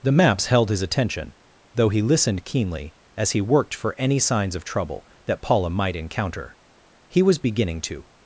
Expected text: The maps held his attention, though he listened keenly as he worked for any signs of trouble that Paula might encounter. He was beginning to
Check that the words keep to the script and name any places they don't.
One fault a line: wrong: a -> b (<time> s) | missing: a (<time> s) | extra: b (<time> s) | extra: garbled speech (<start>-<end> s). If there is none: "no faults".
no faults